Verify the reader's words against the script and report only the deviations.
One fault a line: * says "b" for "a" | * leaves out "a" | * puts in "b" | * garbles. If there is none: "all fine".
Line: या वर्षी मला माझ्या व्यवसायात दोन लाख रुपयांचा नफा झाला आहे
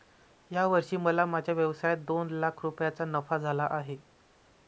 all fine